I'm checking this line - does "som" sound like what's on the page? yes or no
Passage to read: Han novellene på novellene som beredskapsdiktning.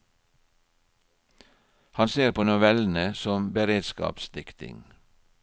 yes